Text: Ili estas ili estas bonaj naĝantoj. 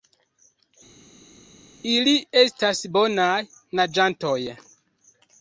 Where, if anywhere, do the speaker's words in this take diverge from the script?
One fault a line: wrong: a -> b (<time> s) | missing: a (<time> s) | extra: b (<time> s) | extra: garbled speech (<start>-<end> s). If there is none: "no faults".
missing: ili estas (2.8 s)